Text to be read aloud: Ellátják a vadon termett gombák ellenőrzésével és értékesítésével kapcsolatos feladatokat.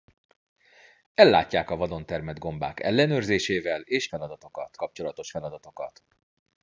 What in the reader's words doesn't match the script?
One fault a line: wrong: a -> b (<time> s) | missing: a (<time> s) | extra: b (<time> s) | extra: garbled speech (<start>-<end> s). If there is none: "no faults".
wrong: értékesítésével -> feladatokat (4.1 s)